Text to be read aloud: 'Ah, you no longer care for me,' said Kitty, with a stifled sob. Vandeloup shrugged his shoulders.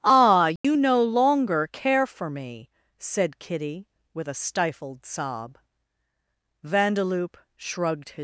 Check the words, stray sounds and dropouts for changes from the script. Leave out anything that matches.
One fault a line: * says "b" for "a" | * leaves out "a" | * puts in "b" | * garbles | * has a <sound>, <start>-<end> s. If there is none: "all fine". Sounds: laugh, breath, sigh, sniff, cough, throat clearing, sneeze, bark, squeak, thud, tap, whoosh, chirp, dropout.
* has a dropout, 0.6-0.6 s
* leaves out "shoulders"